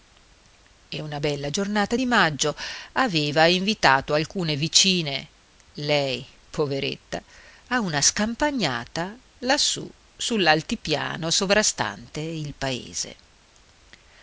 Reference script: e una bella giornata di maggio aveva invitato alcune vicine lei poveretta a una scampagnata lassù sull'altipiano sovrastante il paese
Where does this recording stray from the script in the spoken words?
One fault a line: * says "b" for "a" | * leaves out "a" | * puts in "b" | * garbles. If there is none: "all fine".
all fine